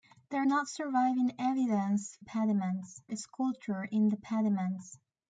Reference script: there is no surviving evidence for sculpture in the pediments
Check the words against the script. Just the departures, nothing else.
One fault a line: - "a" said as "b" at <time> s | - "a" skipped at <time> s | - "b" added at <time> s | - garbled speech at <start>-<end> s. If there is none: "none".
- "is" skipped at 0.5 s
- "for" said as "pediments" at 2.2 s